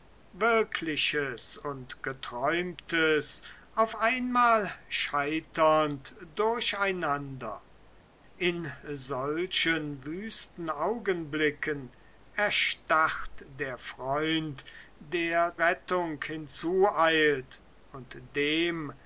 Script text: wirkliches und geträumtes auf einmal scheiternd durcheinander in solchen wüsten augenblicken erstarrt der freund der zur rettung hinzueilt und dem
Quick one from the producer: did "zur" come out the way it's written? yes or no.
no